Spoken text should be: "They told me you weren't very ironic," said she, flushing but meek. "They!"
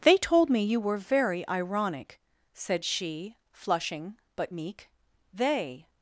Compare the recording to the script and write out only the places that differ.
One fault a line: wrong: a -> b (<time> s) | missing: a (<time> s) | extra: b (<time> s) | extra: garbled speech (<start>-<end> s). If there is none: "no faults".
wrong: weren't -> were (0.8 s)